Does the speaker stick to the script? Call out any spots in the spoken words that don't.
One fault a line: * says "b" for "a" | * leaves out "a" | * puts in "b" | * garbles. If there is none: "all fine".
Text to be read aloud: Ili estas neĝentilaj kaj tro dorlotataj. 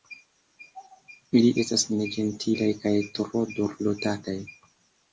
all fine